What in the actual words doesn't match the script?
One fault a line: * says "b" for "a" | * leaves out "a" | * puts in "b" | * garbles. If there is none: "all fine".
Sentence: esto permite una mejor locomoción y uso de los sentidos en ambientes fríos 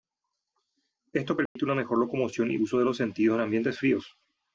all fine